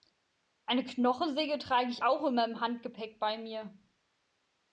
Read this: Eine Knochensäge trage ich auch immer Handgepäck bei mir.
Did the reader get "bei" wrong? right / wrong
right